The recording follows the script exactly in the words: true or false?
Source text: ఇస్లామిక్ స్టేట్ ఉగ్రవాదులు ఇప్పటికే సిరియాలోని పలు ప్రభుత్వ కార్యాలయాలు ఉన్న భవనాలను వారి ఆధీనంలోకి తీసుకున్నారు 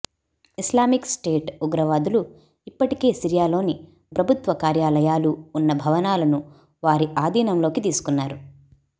false